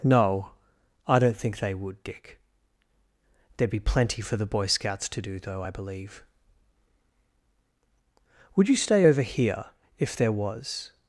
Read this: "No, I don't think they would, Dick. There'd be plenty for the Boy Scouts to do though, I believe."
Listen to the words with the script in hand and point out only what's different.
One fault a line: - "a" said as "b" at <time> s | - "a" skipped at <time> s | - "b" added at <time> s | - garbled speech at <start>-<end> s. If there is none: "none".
- "Would you stay over here if there was" added at 8.6 s